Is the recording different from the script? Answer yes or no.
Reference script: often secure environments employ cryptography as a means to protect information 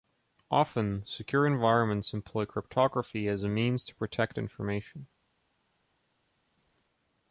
no